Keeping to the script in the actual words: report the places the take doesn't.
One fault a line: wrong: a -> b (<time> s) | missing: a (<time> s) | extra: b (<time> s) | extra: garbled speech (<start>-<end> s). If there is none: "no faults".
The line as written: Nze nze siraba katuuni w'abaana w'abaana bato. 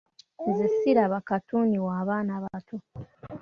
missing: nze (0.7 s)
missing: w'abaana (2.3 s)